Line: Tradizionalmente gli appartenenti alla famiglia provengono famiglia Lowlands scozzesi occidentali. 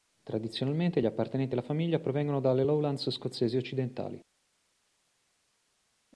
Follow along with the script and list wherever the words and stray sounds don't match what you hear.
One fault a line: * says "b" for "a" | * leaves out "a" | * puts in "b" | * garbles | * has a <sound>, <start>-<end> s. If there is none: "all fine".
* says "dalle" for "famiglia"